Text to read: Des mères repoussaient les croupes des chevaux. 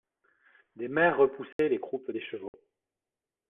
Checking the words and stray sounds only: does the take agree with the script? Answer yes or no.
no